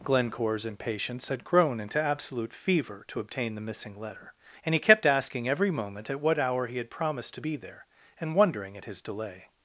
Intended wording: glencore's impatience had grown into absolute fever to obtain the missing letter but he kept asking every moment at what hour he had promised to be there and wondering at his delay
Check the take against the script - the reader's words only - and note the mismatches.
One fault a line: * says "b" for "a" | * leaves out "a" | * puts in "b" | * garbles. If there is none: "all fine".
* says "and" for "but"